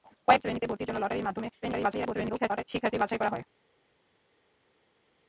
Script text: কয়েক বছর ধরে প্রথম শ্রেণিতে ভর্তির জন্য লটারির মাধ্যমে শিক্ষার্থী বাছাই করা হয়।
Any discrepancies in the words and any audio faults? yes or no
yes